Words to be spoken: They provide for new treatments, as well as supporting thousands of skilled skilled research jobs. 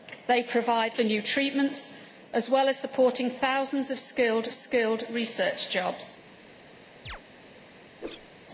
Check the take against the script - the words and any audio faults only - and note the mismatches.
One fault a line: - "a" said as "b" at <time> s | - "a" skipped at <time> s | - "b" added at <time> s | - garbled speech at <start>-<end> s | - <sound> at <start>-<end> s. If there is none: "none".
- chirp at 7.1-7.2 s
- whoosh at 8.0-8.3 s